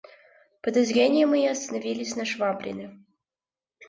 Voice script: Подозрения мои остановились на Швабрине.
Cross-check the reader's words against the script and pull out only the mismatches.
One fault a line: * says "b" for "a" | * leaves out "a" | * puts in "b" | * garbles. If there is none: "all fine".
all fine